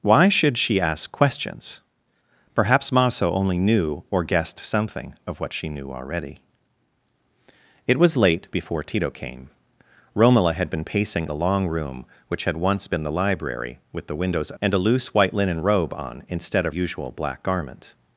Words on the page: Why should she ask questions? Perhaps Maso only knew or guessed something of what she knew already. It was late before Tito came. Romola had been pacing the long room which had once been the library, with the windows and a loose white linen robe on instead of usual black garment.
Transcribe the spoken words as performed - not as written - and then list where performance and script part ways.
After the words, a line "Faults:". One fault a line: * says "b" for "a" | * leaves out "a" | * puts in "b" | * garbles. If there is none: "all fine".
Why should she ask questions? Perhaps Maso only knew or guessed something of what she knew already. It was late before Tito came. Romola had been pacing the long room which had once been the library, with the windows and a loose white linen robe on instead of usual black garment.
Faults:
all fine